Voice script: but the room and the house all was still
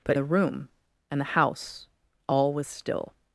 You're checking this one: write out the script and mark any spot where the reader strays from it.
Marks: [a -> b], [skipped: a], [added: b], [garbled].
but the room and the house all was still